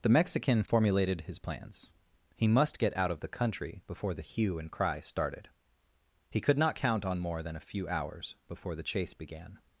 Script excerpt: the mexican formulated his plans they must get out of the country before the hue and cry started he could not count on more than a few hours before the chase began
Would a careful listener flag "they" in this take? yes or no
yes